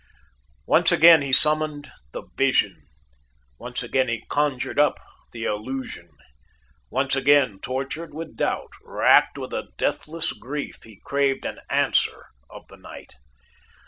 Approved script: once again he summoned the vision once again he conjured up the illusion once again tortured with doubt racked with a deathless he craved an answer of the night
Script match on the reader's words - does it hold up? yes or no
no